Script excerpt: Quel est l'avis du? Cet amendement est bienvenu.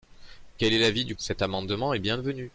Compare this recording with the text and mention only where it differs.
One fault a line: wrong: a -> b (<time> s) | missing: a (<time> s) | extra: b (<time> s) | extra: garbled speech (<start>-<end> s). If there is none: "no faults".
no faults